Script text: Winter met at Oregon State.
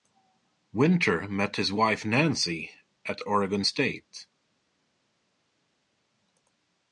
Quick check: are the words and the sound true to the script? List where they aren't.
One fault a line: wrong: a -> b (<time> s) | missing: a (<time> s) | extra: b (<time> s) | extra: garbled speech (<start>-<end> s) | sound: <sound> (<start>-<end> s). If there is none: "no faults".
extra: his wife Nancy (1.6 s)